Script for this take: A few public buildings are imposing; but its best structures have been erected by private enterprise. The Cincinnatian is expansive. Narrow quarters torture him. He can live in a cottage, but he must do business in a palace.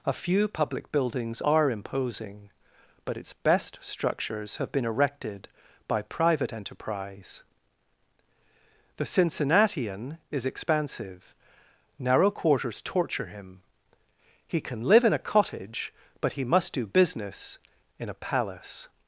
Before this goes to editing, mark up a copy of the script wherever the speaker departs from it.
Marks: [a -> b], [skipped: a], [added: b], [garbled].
A few public buildings are imposing; but its best structures have been erected by private enterprise. The Cincinnatian is expansive. Narrow quarters torture him. He can live in a cottage, but he must do business in a palace.